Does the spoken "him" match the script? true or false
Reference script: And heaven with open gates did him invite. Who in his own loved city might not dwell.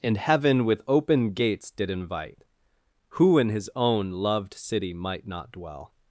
false